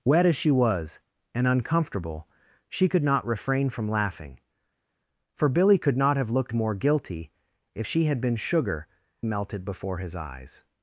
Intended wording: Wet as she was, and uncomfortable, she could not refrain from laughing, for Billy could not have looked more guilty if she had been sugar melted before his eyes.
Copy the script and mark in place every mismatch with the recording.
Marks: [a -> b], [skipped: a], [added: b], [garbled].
Wet as she was, and uncomfortable, she could not refrain from laughing, for Billy could not have looked more guilty if she had been sugar melted before his eyes.